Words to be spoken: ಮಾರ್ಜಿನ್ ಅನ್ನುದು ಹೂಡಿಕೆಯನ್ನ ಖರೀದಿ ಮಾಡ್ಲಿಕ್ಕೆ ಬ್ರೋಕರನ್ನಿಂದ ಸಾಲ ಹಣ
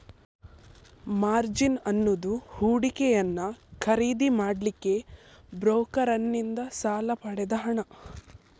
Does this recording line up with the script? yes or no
no